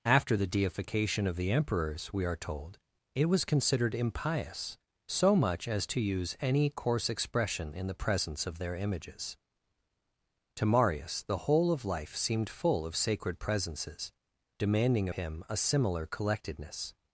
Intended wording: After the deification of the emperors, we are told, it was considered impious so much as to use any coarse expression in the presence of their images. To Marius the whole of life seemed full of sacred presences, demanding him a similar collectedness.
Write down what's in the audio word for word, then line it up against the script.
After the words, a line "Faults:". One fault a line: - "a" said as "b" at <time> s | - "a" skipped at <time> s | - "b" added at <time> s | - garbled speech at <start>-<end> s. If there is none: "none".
After the deification of the emperors, we are told, it was considered impious so much as to use any coarse expression in the presence of their images. To Marius the whole of life seemed full of sacred presences, demanding him a similar collectedness.
Faults:
none